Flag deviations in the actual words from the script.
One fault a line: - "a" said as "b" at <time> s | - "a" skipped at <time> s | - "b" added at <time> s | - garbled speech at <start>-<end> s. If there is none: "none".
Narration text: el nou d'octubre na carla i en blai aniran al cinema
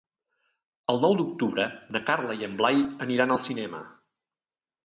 none